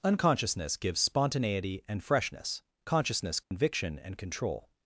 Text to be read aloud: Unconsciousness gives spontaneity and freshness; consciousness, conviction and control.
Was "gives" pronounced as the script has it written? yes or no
yes